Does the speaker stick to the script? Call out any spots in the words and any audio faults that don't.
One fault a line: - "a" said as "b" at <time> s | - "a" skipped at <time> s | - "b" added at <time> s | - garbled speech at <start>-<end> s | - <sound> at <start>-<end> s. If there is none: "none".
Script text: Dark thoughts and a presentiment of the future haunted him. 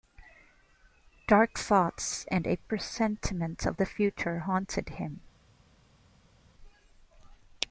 none